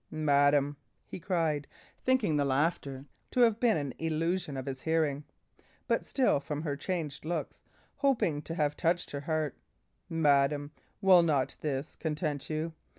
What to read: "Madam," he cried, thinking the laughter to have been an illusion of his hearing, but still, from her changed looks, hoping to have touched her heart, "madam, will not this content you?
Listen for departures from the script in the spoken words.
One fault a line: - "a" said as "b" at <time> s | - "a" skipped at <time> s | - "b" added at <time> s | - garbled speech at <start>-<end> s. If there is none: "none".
none